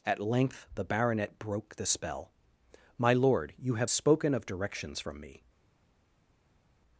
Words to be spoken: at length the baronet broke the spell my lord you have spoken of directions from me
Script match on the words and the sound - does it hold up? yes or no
yes